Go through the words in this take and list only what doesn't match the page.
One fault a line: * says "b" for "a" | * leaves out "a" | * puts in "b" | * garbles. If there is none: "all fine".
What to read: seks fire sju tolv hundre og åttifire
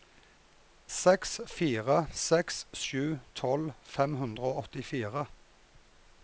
* puts in "seks"
* puts in "fem"